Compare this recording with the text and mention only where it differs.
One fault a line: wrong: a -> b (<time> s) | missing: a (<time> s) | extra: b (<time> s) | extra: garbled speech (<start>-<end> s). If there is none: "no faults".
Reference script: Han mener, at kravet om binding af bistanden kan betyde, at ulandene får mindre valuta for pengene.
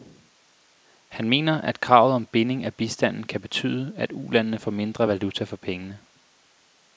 no faults